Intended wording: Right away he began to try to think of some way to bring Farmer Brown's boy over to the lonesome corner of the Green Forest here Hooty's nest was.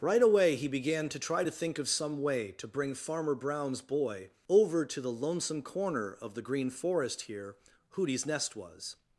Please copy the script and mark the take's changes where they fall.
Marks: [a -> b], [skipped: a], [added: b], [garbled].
Right away he began to try to think of some way to bring Farmer Brown's boy over to the lonesome corner of the Green Forest here Hooty's nest was.